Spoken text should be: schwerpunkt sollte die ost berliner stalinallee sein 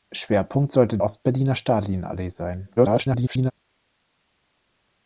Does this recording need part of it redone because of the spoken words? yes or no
yes